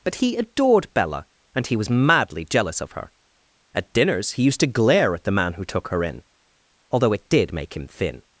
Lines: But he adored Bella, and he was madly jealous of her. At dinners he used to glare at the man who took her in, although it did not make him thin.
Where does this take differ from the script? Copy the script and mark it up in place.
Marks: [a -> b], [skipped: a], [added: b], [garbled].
But he adored Bella, and he was madly jealous of her. At dinners he used to glare at the man who took her in, although it did [skipped: not] make him thin.